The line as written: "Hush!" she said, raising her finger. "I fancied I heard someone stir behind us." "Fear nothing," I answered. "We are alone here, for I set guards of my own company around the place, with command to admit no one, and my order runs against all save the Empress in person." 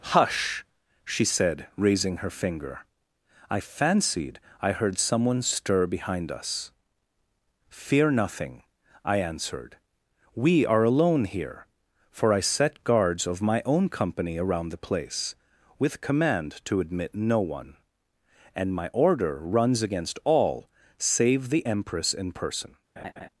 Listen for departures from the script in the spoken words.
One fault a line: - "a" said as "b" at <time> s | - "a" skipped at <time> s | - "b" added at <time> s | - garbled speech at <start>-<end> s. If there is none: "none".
none